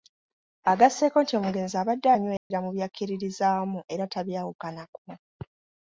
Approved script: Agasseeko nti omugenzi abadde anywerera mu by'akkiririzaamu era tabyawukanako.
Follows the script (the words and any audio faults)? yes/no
no